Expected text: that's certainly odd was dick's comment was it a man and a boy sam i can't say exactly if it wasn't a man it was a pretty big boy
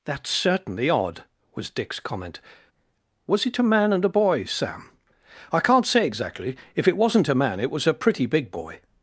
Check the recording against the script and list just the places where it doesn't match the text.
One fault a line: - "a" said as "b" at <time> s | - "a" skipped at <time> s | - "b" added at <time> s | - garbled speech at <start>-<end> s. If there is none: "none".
none